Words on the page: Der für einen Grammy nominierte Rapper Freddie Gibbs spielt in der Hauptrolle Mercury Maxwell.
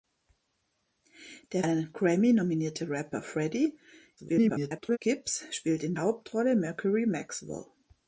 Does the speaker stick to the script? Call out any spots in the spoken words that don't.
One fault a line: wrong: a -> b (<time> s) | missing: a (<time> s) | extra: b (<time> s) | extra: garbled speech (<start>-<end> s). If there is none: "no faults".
missing: für (1.6 s)
extra: garbled speech (4.2-5.0 s)
missing: der (6.0 s)